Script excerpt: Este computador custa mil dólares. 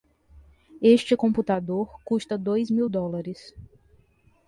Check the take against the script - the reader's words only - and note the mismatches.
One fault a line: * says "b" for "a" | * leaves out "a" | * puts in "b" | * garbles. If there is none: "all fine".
* puts in "dois"